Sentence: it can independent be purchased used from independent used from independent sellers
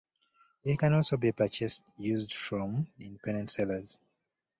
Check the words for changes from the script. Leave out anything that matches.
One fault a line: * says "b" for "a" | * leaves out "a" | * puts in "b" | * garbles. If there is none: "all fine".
* says "also" for "independent"
* leaves out "used from independent"